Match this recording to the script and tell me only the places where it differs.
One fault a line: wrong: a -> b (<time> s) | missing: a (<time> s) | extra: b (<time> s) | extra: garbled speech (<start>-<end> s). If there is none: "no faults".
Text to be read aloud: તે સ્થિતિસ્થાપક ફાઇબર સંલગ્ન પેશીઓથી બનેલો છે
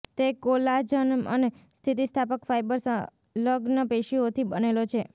extra: કોલાજન અને (0.4 s)